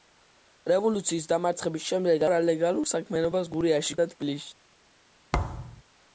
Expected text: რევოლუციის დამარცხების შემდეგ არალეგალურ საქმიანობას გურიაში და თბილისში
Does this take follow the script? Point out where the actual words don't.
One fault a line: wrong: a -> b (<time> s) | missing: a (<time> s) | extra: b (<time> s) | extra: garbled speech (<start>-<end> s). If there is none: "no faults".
no faults